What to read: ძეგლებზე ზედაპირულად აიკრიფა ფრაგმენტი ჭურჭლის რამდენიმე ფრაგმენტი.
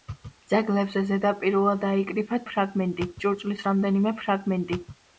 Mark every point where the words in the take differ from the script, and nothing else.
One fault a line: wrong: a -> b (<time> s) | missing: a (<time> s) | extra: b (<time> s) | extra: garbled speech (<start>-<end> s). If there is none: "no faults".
no faults